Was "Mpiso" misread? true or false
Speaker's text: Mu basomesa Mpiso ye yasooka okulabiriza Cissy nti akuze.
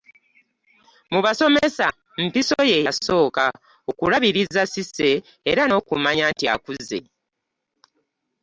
false